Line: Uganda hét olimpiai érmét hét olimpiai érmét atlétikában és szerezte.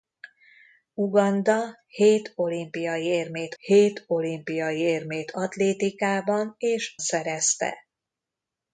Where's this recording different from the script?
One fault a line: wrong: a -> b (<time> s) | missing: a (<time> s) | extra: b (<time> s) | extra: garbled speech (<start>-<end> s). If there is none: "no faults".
no faults